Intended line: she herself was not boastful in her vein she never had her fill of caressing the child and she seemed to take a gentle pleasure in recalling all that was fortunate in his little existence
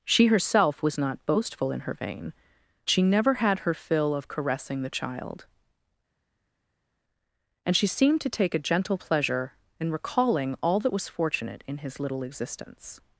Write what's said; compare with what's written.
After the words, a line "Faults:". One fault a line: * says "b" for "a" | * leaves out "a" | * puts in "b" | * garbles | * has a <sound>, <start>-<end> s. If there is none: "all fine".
she herself was not boastful in her vein she never had her fill of caressing the child and she seemed to take a gentle pleasure in recalling all that was fortunate in his little existence
Faults:
all fine